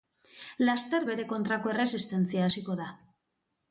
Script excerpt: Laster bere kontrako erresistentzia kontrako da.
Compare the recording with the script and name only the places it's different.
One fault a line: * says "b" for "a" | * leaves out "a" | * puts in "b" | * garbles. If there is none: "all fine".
* says "hasiko" for "kontrako"